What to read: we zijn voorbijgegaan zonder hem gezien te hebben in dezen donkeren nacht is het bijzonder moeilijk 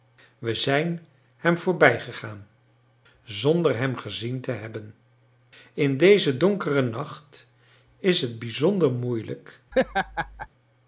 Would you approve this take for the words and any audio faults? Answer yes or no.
no